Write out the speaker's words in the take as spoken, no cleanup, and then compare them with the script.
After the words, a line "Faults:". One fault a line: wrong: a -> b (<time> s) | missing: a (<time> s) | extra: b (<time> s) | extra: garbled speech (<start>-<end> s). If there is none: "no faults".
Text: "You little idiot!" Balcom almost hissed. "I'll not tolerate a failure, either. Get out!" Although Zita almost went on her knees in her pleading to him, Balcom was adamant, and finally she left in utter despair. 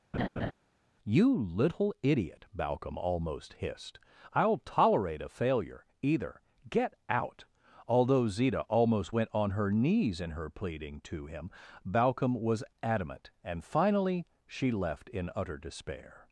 "You little idiot!" Balcom almost hissed. "I'll tolerate a failure, either. Get out!" Although Zita almost went on her knees in her pleading to him, Balcom was adamant, and finally she left in utter despair.
Faults:
missing: not (4.6 s)